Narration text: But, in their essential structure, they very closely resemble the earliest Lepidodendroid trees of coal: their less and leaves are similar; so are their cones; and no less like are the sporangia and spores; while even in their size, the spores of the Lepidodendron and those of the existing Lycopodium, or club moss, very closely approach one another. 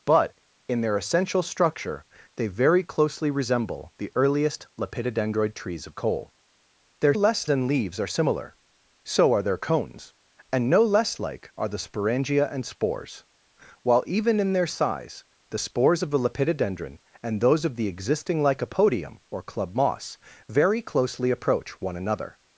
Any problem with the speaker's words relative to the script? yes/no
no